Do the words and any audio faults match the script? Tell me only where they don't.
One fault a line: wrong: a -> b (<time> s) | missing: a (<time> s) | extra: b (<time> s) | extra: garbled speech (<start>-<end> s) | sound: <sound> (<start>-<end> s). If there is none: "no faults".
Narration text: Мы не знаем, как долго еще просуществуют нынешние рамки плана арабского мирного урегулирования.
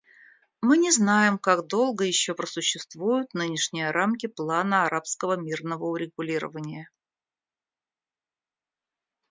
no faults